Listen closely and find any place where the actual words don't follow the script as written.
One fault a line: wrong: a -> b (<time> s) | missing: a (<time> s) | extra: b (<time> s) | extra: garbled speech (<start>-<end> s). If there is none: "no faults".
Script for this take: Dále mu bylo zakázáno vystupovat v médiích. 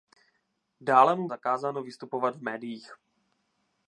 missing: bylo (1.3 s)